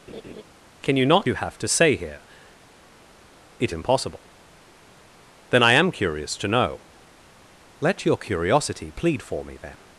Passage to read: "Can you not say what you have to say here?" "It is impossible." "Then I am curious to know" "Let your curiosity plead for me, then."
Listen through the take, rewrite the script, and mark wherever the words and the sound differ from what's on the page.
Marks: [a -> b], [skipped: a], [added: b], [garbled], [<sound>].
[laugh] "Can you not [skipped: say what] you have to say here?" "It [skipped: is] impossible." "Then I am curious to know" "Let your curiosity plead for me, then."